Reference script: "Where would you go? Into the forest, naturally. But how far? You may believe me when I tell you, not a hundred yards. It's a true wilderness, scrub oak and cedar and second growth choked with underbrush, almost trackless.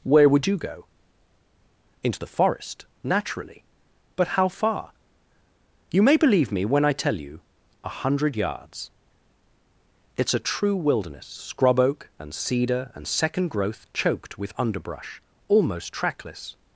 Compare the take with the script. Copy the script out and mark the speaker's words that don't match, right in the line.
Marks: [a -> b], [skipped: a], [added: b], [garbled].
"Where would you go? Into the forest, naturally. But how far? You may believe me when I tell you, [skipped: not] a hundred yards. It's a true wilderness, scrub oak and cedar and second growth choked with underbrush, almost trackless.